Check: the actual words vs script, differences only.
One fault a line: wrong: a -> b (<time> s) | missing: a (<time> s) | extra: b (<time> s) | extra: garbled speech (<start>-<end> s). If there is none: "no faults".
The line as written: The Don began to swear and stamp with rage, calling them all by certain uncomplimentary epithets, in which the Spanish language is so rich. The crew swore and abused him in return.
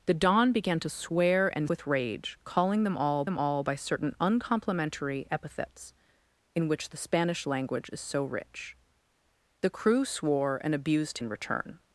missing: stamp (1.7 s)
extra: them all (3.2 s)
missing: him (11.2 s)